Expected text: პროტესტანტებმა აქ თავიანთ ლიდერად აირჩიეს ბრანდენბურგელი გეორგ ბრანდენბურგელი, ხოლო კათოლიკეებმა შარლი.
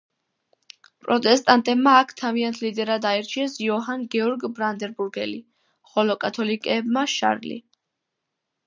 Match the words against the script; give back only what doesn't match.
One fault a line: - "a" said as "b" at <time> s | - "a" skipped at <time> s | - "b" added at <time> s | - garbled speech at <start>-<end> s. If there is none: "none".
- "ბრანდენბურგელი" said as "იოჰან" at 3.7 s